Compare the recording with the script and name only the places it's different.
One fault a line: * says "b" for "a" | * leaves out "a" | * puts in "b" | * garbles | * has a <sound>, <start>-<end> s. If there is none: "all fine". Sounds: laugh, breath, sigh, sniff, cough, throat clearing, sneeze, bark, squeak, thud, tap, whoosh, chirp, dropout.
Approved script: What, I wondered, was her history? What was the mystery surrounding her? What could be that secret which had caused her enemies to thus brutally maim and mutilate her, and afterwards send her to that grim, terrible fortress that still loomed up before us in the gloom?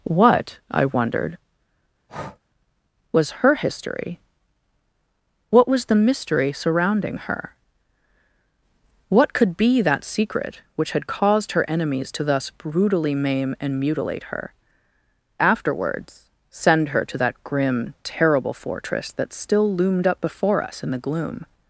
* has a breath, 2.1-2.4 s
* leaves out "and"